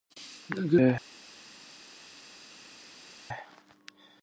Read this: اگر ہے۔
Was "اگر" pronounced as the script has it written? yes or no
yes